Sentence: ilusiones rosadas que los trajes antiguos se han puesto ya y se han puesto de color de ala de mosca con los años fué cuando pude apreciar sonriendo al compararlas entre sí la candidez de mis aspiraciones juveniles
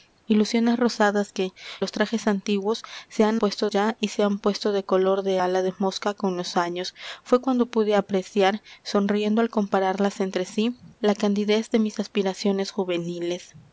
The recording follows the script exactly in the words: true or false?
true